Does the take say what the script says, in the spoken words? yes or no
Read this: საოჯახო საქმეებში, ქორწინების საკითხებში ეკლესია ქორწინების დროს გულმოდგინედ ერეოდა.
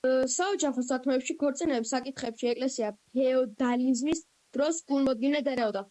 no